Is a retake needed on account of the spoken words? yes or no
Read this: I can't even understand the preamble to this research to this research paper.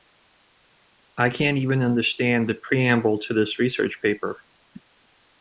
yes